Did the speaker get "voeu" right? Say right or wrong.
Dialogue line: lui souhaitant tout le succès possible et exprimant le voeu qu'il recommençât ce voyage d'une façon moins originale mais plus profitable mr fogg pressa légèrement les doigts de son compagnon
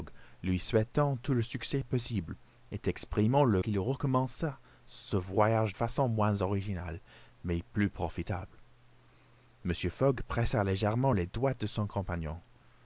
wrong